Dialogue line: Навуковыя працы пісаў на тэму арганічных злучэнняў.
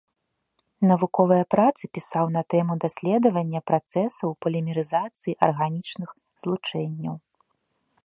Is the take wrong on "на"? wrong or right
right